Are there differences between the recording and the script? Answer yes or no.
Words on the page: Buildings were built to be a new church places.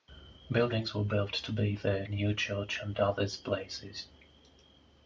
yes